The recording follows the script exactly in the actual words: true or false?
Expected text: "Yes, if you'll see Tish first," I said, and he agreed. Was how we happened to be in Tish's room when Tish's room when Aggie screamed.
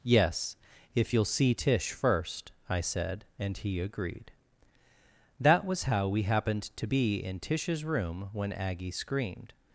false